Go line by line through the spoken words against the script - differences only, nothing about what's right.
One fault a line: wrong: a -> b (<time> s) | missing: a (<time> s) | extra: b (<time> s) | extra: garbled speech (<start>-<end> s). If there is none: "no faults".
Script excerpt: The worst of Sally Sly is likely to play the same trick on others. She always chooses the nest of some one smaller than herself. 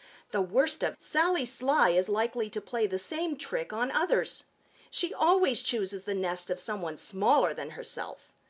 no faults